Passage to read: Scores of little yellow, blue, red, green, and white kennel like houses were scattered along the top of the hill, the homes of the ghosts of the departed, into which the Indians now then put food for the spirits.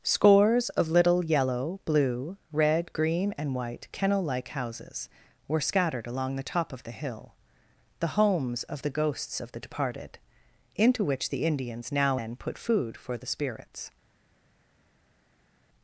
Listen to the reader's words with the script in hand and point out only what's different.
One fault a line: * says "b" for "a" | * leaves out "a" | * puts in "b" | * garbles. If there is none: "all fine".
all fine